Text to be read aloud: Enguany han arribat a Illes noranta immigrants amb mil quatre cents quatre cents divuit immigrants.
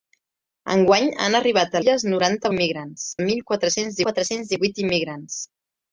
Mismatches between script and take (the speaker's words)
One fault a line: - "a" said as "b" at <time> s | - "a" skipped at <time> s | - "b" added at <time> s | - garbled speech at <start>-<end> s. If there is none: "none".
none